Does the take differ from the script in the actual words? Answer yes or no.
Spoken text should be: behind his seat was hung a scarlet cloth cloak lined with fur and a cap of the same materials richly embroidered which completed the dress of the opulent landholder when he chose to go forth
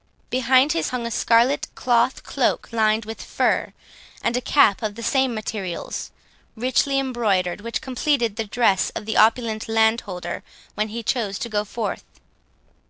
yes